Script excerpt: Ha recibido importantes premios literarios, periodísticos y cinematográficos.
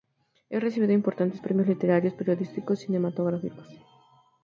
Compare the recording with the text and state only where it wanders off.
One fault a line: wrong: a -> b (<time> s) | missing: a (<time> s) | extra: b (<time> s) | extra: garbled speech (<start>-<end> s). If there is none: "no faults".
no faults